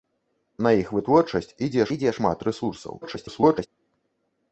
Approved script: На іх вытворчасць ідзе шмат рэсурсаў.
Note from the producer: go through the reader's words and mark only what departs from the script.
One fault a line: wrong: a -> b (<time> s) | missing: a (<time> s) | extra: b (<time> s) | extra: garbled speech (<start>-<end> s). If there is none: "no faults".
extra: ідзе (2.0 s)
extra: garbled speech (3.0-3.7 s)